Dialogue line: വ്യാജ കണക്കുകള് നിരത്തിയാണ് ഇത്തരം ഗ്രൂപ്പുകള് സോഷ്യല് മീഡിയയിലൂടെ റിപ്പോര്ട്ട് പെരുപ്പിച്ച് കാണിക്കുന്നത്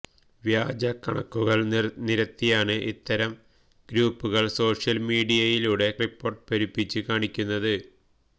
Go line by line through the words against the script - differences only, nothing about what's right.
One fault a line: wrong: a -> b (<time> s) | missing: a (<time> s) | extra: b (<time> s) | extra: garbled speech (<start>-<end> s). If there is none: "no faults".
no faults